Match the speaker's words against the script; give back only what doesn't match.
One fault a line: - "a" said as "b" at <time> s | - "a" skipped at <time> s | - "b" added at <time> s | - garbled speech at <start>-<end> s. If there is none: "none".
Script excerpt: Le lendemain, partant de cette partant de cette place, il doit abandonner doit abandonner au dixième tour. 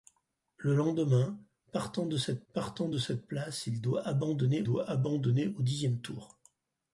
none